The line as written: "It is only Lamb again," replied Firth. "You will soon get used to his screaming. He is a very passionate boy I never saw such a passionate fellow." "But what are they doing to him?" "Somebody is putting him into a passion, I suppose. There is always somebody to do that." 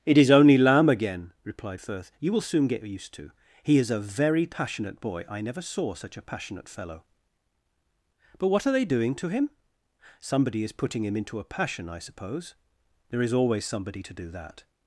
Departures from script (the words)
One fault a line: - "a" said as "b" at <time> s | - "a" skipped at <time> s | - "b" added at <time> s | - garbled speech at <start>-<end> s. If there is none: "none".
- "his screaming" skipped at 3.3 s